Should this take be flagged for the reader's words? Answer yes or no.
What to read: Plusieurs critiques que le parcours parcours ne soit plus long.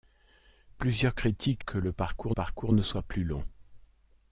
no